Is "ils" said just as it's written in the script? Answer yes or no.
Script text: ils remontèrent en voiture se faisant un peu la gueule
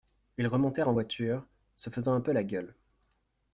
yes